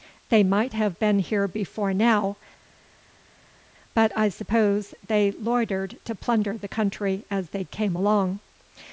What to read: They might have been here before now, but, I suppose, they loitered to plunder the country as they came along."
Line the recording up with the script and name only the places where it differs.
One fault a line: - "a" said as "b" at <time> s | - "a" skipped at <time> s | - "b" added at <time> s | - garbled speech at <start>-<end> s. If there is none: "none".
none